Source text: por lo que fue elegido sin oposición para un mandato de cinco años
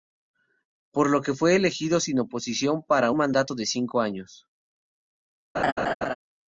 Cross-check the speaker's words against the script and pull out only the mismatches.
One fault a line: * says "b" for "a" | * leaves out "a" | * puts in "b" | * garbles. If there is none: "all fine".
* leaves out "un"